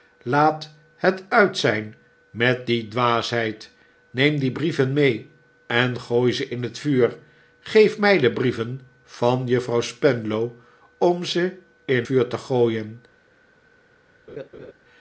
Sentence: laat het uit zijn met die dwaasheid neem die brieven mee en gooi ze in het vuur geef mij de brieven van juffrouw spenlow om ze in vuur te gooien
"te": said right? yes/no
yes